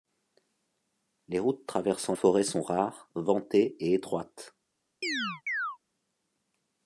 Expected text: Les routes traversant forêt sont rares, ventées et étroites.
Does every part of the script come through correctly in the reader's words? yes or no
yes